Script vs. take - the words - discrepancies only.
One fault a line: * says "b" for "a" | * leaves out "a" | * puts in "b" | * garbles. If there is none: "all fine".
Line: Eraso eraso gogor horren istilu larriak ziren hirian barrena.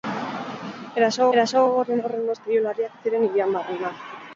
all fine